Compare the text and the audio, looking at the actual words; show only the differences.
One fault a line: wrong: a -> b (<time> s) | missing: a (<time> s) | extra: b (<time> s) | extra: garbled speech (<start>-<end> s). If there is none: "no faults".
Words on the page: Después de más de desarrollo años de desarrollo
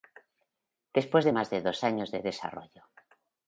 wrong: desarrollo -> dos (1.6 s)